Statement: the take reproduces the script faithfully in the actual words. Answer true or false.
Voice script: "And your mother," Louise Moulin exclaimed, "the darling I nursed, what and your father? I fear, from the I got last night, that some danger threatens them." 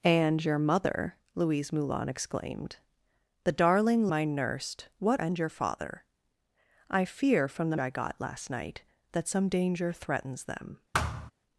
true